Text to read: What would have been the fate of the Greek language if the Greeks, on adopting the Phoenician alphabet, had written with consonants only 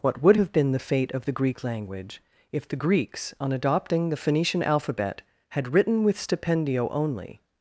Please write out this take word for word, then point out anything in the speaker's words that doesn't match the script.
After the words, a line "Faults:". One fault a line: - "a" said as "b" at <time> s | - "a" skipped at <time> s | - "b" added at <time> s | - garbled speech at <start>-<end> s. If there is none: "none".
What would have been the fate of the Greek language if the Greeks, on adopting the Phoenician alphabet, had written with stipendio only
Faults:
- "consonants" said as "stipendio" at 6.2 s